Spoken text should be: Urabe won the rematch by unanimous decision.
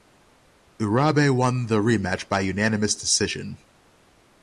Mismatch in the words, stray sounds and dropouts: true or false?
false